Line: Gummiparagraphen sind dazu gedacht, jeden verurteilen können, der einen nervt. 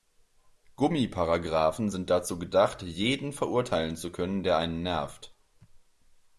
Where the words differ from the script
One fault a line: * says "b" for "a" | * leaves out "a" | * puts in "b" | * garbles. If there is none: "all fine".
* puts in "zu"